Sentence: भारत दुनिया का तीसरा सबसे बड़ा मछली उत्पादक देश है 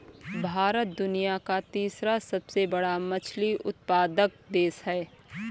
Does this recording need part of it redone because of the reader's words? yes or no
no